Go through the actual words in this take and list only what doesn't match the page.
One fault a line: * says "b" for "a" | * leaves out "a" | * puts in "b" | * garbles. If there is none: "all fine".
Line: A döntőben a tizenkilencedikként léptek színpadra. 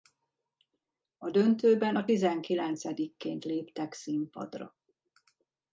all fine